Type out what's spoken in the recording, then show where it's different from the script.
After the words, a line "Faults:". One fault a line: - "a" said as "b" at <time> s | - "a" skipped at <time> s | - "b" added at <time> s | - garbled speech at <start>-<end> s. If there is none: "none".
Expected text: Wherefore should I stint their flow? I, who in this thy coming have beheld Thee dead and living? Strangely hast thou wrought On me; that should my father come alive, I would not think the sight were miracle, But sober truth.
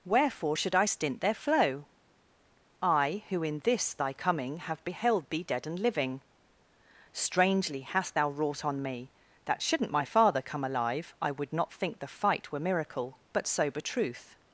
Wherefore should I stint their flow? I, who in this thy coming have beheld Thee dead and living? Strangely hast thou wrought On me; that shouldn't my father come alive, I would not think the fight were miracle, But sober truth.
Faults:
- "should" said as "shouldn't" at 9.6 s
- "sight" said as "fight" at 12.1 s